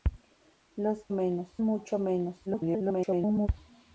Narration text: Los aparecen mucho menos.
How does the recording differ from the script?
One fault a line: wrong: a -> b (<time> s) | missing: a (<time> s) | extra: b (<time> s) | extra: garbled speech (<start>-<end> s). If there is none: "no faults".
wrong: aparecen -> menos (1.1 s)
extra: garbled speech (2.5-3.5 s)